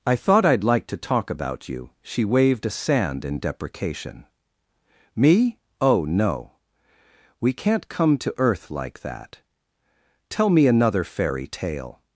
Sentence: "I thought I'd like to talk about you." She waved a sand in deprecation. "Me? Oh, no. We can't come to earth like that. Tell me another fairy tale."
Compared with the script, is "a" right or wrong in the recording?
right